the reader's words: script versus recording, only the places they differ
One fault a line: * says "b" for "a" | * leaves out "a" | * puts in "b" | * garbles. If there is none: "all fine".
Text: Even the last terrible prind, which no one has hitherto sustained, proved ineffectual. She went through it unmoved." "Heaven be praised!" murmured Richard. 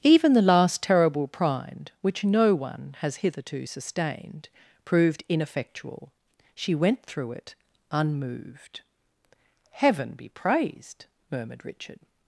all fine